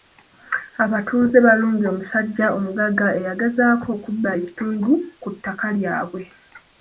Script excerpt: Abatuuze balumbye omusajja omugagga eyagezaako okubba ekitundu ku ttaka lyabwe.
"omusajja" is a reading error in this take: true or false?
false